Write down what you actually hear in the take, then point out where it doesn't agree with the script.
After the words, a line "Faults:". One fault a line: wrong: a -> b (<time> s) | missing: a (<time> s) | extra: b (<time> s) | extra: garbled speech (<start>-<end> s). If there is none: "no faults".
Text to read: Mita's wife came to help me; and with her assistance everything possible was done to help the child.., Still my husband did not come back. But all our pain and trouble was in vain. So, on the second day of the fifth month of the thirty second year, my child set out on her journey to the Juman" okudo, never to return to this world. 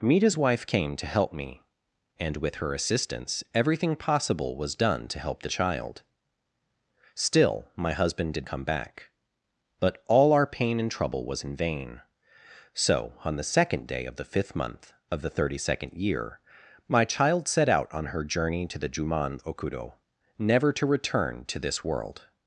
Mita's wife came to help me; and with her assistance everything possible was done to help the child.., Still my husband did come back. But all our pain and trouble was in vain. So, on the second day of the fifth month of the thirty second year, my child set out on her journey to the Juman" okudo, never to return to this world.
Faults:
missing: not (8.5 s)